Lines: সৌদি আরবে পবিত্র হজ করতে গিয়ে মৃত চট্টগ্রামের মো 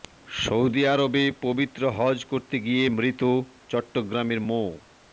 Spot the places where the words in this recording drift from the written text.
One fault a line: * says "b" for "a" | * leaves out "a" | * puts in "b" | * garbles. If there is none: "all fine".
all fine